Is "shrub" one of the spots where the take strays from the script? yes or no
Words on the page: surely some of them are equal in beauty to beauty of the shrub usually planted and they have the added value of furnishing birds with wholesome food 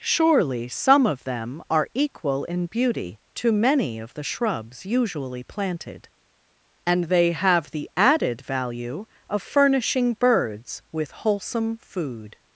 yes